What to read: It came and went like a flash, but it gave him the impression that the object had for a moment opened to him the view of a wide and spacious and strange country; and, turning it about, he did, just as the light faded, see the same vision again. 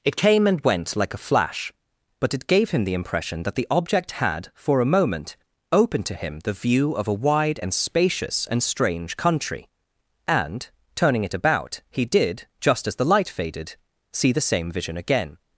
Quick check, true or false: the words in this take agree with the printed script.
true